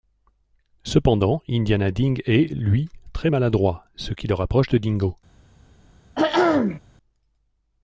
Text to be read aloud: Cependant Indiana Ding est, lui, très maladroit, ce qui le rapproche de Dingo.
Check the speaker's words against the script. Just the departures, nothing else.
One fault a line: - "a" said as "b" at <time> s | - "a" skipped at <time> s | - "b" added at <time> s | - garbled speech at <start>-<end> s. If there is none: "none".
none